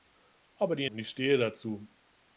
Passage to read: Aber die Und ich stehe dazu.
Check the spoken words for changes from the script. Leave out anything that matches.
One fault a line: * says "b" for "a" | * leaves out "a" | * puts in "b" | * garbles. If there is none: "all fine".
all fine